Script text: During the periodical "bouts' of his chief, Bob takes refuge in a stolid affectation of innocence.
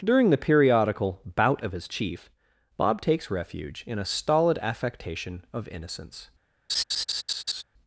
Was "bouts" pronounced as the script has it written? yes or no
no